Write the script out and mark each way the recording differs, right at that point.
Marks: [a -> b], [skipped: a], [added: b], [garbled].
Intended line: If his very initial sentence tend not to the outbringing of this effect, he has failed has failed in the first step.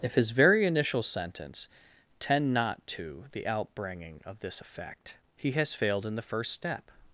If his very initial sentence tend not to the outbringing of this effect, he has failed [skipped: has failed] in the first step.